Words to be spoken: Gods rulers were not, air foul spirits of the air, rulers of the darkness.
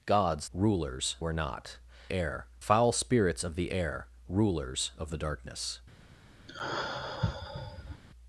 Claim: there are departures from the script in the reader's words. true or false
false